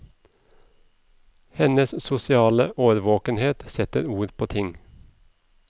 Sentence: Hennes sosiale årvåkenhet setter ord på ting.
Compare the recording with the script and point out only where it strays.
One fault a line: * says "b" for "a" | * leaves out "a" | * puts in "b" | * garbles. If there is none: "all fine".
all fine